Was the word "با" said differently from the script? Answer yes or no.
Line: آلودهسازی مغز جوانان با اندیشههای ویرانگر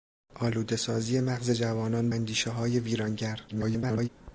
yes